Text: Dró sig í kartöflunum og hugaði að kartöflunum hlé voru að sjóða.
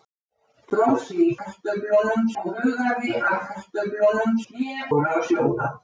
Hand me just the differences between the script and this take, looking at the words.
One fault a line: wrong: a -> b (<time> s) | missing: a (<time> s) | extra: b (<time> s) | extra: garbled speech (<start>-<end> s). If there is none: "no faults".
no faults